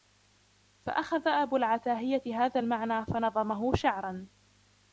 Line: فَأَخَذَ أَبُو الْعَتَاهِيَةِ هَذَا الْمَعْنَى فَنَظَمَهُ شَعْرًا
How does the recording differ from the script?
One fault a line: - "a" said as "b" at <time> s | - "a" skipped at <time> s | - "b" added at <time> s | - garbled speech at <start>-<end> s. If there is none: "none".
none